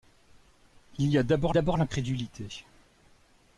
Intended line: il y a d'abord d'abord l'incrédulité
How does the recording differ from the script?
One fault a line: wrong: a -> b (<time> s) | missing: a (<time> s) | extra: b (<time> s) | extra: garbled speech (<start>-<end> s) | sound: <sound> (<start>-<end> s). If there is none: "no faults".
no faults